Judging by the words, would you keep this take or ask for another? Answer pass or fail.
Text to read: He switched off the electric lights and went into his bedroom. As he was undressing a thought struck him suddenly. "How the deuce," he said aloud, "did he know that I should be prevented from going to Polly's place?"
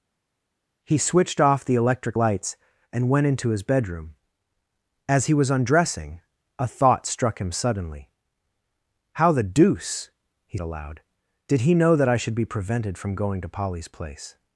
fail